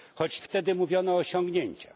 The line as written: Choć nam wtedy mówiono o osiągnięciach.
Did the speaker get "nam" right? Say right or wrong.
wrong